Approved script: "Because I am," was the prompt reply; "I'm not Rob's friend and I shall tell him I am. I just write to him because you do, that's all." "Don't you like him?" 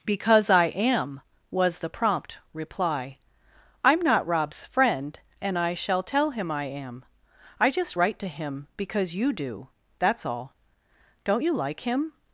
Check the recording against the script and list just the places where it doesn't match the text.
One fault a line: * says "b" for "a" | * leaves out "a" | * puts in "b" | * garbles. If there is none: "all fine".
all fine